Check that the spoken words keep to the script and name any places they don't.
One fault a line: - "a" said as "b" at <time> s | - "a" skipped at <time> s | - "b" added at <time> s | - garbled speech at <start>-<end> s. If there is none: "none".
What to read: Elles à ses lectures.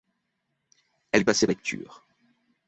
none